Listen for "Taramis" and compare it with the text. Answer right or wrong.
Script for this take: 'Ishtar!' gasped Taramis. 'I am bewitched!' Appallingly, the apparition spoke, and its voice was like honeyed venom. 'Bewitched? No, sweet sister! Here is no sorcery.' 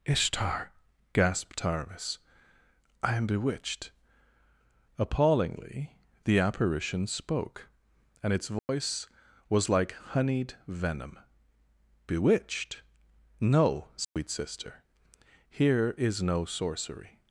right